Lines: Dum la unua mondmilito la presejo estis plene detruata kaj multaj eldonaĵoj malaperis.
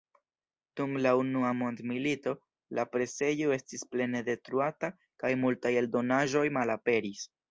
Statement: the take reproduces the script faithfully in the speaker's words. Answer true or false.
true